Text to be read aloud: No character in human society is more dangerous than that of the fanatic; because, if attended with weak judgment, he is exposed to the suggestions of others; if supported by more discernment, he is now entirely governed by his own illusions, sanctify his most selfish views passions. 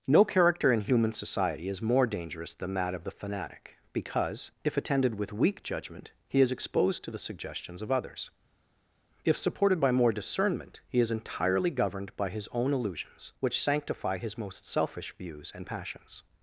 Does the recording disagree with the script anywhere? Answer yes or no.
yes